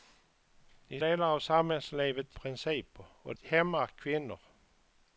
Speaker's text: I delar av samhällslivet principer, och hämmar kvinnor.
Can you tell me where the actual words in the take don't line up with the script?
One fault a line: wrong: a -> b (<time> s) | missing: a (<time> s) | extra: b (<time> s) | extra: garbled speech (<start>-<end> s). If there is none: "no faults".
no faults